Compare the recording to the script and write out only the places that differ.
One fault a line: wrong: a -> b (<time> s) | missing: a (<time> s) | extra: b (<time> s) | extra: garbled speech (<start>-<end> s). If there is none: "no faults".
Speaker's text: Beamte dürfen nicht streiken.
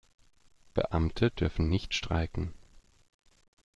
no faults